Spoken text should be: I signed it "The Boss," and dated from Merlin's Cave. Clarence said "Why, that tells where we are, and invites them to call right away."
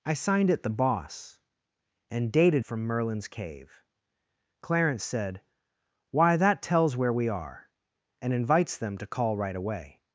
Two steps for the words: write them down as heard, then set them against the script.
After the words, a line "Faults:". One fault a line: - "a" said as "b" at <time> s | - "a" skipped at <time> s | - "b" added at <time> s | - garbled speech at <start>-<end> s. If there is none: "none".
I signed it "The Boss," and dated from Merlin's Cave. Clarence said "Why, that tells where we are, and invites them to call right away."
Faults:
none